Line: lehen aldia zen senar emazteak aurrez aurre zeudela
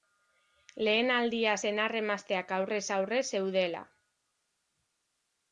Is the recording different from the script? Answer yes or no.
yes